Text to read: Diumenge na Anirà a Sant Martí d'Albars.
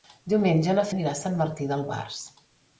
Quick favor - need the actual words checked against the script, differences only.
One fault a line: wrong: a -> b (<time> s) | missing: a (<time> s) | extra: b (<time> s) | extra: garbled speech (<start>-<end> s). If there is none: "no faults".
no faults